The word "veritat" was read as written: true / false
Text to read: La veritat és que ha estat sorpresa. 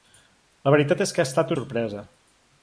true